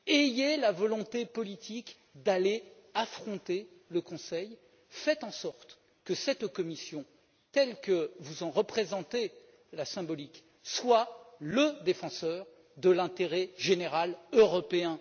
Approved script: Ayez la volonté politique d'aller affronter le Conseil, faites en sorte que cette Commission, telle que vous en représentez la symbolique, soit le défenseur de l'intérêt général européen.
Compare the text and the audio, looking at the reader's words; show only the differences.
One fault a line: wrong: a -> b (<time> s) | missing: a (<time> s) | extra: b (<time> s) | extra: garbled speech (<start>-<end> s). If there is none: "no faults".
no faults